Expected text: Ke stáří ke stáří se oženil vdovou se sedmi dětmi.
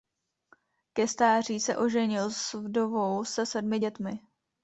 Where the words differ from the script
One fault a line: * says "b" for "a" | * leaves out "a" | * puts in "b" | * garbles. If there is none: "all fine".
* leaves out "ke stáří"
* puts in "s"